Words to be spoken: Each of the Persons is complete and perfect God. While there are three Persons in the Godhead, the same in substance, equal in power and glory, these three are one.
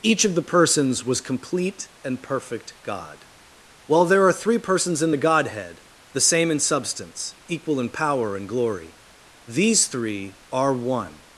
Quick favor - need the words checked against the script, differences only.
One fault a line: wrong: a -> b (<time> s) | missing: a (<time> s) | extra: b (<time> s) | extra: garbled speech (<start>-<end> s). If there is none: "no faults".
wrong: is -> was (1.1 s)